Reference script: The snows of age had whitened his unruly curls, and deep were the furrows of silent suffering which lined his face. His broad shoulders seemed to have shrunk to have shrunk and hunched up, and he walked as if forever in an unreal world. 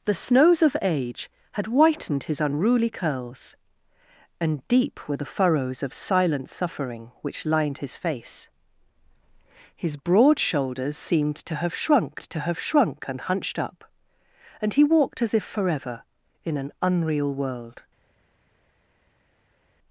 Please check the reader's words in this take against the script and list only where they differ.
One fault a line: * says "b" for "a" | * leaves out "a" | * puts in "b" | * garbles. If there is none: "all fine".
all fine